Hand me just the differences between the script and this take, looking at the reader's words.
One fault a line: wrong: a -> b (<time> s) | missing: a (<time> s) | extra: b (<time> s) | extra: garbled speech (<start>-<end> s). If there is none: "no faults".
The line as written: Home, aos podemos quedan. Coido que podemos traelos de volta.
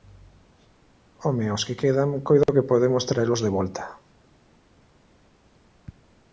wrong: podemos -> que (1.7 s)